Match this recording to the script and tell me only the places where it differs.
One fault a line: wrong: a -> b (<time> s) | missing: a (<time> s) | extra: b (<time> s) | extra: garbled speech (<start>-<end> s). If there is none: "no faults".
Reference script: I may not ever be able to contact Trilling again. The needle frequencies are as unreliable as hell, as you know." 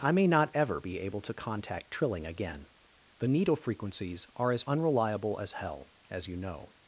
no faults